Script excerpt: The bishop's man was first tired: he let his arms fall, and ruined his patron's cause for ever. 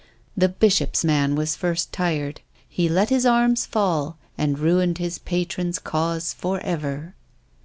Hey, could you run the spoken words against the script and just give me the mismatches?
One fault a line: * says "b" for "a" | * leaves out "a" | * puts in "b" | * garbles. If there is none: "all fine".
all fine